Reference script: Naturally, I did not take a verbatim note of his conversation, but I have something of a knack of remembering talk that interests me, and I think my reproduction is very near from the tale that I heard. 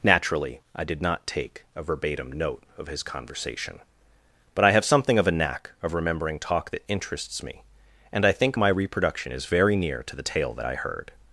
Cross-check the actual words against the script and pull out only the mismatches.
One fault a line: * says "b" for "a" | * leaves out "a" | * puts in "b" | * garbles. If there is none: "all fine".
* says "to" for "from"